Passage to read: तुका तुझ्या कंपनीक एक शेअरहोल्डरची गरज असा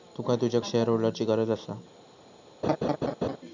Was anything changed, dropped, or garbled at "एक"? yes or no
yes